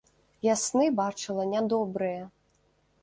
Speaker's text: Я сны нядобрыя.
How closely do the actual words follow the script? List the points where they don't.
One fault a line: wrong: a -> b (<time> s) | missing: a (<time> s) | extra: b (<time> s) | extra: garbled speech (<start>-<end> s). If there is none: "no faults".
extra: бачыла (1.0 s)